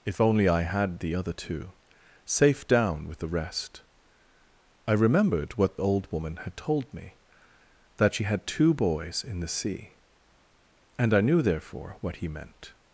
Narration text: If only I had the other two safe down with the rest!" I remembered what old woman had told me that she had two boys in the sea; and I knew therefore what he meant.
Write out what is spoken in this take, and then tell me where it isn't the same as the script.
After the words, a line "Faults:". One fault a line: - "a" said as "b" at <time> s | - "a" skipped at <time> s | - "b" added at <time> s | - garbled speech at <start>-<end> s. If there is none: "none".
If only I had the other two safe down with the rest!" I remembered what old woman had told me that she had two boys in the sea; and I knew therefore what he meant.
Faults:
none